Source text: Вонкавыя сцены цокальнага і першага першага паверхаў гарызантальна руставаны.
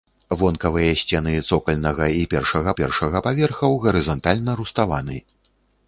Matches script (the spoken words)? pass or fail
pass